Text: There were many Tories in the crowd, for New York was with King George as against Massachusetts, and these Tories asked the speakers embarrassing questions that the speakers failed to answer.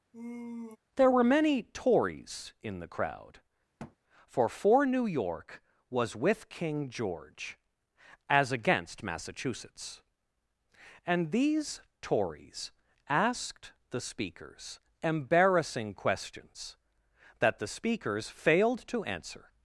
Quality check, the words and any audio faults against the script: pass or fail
fail